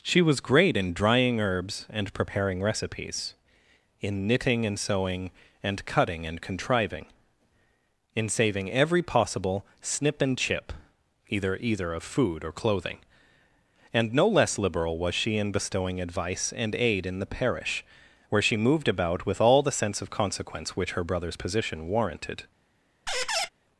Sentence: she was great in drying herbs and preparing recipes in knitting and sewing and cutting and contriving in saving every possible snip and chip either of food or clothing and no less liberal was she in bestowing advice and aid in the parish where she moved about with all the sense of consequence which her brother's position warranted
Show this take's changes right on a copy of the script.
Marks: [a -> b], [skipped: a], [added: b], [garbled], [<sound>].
she was great in drying herbs and preparing recipes in knitting and sewing and cutting and contriving in saving every possible snip and chip either [added: either] of food or clothing and no less liberal was she in bestowing advice and aid in the parish where she moved about with all the sense of consequence which her brother's position warranted [squeak]